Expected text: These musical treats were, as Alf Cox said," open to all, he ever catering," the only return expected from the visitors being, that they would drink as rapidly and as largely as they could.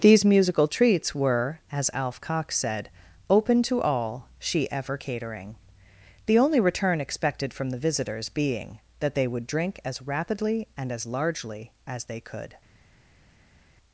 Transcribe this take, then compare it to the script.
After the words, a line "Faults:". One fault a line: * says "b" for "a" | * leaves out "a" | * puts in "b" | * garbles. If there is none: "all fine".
These musical treats were, as Alf Cox said," open to all, she ever catering," the only return expected from the visitors being, that they would drink as rapidly and as largely as they could.
Faults:
* says "she" for "he"